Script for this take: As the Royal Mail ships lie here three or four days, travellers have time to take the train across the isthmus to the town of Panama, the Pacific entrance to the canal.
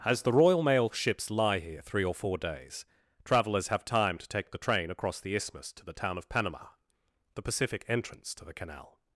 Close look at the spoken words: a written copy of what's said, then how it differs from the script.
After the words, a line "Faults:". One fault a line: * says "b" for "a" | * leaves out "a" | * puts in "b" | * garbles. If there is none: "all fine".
As the Royal Mail ships lie here three or four days, travellers have time to take the train across the isthmus to the town of Panama, the Pacific entrance to the canal.
Faults:
all fine